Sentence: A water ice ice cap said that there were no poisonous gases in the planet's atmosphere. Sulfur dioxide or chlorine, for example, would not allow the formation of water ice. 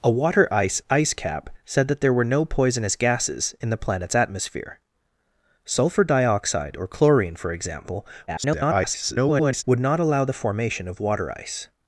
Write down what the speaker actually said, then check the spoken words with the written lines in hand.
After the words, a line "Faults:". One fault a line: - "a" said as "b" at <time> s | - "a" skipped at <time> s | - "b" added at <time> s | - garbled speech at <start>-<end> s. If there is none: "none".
A water ice ice cap said that there were no poisonous gases in the planet's atmosphere. Sulfur dioxide or chlorine, for example, [garbled] would not allow the formation of water ice.
Faults:
- garbled speech at 8.3-9.6 s